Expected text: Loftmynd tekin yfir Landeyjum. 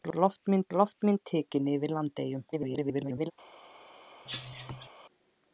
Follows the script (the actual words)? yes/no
no